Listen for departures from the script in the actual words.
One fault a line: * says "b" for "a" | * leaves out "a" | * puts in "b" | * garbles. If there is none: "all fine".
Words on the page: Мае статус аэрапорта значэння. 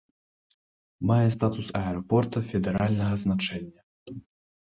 * puts in "федэральнага"